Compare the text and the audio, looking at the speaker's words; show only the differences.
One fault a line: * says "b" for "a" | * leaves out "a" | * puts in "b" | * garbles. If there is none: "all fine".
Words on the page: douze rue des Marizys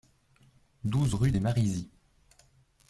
all fine